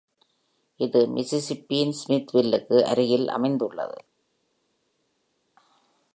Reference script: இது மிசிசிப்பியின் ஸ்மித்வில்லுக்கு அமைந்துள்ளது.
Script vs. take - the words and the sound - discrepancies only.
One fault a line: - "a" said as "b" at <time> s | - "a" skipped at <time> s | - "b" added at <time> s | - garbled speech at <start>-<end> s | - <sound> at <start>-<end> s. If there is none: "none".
- "அருகில்" added at 2.8 s